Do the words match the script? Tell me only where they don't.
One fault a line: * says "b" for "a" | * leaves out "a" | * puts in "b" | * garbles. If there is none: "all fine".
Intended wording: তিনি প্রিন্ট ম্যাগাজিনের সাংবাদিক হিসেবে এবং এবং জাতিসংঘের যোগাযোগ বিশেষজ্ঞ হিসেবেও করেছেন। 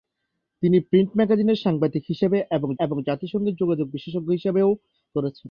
all fine